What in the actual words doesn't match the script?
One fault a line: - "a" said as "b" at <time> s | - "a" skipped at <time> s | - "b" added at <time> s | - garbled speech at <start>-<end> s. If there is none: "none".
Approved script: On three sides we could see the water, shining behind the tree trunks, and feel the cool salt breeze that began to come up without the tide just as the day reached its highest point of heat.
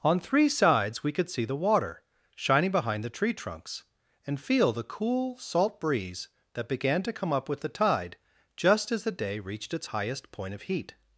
- "without" said as "with" at 7.5 s